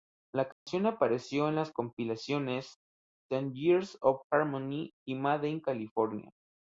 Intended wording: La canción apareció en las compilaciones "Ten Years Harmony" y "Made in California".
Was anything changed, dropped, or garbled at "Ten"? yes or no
no